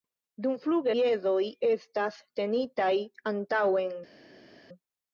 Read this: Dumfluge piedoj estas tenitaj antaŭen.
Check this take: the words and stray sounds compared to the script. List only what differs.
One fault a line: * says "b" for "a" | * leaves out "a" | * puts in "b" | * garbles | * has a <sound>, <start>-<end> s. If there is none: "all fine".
all fine